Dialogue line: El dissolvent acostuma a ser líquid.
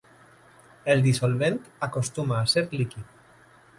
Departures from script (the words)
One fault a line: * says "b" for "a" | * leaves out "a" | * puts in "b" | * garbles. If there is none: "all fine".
all fine